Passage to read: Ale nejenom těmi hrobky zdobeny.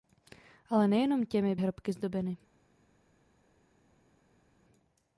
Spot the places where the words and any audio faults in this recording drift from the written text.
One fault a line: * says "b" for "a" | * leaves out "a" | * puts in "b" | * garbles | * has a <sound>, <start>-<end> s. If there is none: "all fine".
all fine